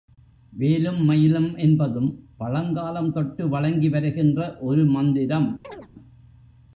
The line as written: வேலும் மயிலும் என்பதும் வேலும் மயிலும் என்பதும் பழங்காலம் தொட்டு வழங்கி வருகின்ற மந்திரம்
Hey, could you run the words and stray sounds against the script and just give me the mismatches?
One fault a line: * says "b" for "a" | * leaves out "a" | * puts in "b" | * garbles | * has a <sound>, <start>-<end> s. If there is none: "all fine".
* leaves out "வேலும் மயிலும் என்பதும்"
* puts in "ஒரு"
* has a chirp, 5.6-5.9 s